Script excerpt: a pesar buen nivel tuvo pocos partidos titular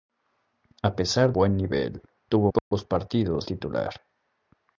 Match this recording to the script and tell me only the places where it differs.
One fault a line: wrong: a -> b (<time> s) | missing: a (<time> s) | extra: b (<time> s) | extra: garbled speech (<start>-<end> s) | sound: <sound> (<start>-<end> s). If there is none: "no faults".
sound: dropout (2.6-2.7 s)